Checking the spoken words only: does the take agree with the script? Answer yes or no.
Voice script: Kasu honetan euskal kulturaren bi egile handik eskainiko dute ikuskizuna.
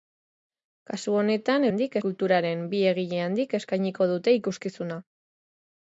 no